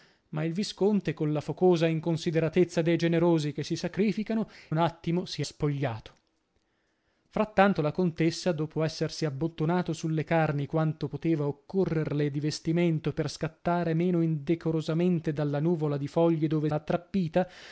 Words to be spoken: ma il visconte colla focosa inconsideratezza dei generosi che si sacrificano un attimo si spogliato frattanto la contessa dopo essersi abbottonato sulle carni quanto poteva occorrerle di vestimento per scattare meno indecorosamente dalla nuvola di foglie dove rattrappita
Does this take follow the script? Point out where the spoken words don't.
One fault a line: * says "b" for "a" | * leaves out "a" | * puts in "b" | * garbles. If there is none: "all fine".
all fine